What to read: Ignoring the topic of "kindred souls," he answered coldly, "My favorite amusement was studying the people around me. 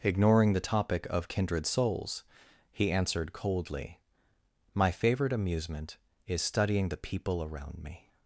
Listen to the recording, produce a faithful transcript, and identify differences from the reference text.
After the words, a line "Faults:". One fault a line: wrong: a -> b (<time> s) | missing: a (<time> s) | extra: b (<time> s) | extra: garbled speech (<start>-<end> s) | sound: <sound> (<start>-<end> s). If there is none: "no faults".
Ignoring the topic of "kindred souls," he answered coldly, "My favorite amusement is studying the people around me.
Faults:
wrong: was -> is (6.3 s)